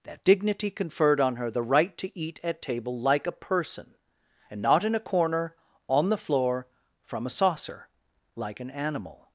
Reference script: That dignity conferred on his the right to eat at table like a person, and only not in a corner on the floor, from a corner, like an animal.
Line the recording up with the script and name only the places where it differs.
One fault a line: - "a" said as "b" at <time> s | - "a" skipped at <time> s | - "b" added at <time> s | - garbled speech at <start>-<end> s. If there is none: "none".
- "his" said as "her" at 1.4 s
- "only" skipped at 4.6 s
- "corner" said as "saucer" at 7.3 s